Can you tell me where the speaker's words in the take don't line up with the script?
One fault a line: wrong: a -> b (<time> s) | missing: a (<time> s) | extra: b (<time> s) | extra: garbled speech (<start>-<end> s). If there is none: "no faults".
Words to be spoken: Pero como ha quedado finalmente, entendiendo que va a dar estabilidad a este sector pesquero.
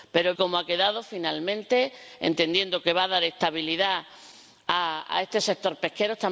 no faults